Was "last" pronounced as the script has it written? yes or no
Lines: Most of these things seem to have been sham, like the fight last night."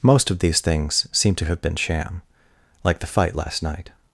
yes